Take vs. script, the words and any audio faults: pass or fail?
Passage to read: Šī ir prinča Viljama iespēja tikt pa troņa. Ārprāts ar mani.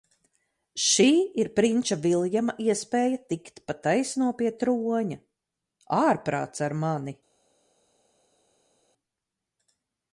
fail